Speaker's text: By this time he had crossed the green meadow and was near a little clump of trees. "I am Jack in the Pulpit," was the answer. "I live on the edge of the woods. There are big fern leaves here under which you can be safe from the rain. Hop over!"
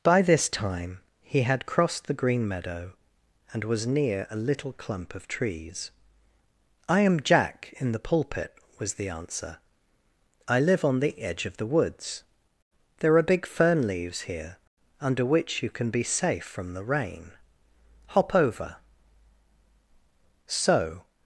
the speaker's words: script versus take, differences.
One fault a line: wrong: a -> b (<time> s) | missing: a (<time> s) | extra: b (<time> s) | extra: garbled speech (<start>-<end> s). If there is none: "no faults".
extra: So (20.5 s)